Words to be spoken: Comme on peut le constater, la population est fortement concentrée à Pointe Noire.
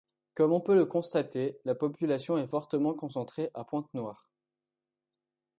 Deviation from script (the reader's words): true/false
false